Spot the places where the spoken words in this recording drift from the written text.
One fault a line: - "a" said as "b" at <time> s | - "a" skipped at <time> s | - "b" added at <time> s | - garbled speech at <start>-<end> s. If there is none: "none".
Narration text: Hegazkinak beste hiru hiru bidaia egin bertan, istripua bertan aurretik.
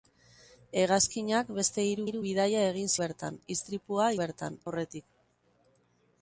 none